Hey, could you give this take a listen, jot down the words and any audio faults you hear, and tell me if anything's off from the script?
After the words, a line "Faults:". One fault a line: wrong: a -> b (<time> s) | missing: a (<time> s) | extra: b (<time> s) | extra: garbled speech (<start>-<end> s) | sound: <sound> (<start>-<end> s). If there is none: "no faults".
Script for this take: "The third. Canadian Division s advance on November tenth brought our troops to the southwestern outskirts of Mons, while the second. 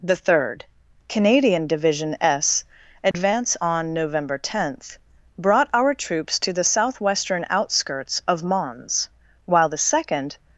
"The third. Canadian Division s advance on November tenth brought our troops to the southwestern outskirts of Mons, while the second.
Faults:
sound: dropout (3.1-3.1 s)